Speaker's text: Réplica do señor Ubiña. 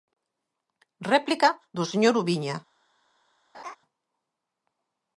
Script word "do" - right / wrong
right